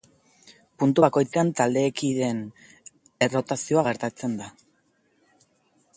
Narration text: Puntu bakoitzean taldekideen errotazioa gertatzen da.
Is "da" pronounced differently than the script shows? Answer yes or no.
no